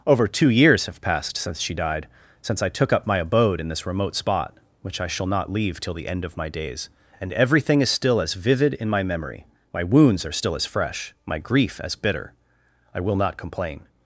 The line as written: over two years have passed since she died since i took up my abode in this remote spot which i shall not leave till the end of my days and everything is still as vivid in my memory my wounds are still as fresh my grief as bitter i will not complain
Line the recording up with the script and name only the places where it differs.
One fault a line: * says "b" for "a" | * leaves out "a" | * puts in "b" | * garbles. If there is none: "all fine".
all fine